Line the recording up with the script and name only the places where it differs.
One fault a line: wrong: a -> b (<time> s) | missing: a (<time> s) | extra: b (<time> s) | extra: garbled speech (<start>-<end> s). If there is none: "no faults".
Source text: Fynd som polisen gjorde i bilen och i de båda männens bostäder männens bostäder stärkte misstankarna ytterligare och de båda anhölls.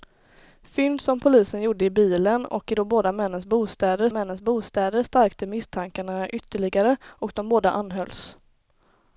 no faults